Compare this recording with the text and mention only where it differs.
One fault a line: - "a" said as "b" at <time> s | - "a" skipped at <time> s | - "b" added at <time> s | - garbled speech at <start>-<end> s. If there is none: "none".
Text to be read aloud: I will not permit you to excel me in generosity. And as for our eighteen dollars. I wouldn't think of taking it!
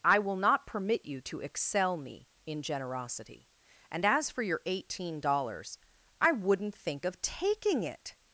- "our" said as "your" at 4.4 s